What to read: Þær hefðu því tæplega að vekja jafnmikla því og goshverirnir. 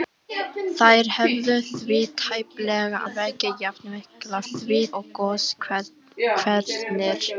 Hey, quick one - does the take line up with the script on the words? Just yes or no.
yes